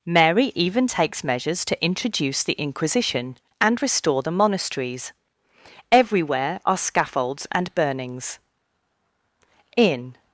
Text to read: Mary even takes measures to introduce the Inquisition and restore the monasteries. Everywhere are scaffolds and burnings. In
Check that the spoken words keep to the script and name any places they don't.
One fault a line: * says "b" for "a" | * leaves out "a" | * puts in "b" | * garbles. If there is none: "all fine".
all fine